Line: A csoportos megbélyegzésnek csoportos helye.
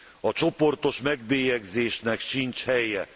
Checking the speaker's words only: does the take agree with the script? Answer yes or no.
no